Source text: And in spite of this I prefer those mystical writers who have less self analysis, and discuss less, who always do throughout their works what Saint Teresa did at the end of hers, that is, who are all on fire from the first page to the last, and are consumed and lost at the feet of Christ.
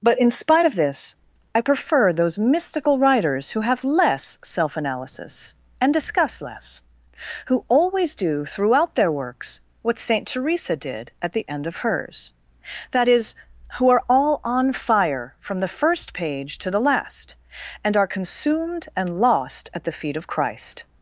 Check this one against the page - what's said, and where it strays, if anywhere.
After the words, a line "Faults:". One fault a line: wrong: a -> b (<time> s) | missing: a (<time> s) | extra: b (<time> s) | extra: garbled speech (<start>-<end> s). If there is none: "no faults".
But in spite of this I prefer those mystical writers who have less self analysis, and discuss less, who always do throughout their works what Saint Teresa did at the end of hers, that is, who are all on fire from the first page to the last, and are consumed and lost at the feet of Christ.
Faults:
wrong: And -> But (0.0 s)